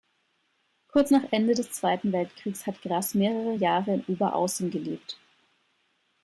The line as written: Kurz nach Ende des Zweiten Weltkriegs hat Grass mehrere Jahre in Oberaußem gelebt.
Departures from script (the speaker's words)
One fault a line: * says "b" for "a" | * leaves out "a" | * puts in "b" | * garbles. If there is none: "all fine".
all fine